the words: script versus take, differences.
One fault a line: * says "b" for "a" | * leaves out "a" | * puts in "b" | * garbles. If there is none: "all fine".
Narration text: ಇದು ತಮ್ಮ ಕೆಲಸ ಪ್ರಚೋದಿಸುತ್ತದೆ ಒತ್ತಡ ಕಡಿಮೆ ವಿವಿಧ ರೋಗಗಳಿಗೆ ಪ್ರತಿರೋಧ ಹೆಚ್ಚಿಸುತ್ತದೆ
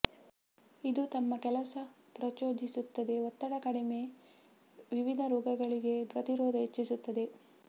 all fine